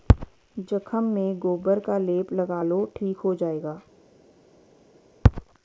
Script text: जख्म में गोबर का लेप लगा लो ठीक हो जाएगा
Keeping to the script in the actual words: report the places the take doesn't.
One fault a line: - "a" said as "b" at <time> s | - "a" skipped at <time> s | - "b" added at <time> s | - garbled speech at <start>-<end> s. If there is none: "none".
none